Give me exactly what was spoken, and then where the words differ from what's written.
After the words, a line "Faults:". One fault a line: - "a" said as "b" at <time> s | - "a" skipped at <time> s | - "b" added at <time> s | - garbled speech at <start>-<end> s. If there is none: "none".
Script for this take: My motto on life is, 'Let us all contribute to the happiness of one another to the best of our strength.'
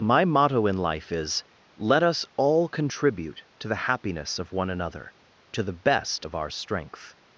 My motto in life is, 'Let us all contribute to the happiness of one another to the best of our strength.'
Faults:
- "on" said as "in" at 0.7 s